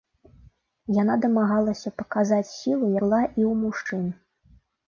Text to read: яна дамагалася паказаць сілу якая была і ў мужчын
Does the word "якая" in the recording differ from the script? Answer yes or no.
yes